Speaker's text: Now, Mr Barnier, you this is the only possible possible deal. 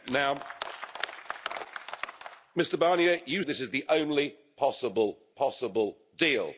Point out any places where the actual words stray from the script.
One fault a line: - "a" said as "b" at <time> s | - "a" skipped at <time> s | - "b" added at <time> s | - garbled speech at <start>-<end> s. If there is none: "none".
none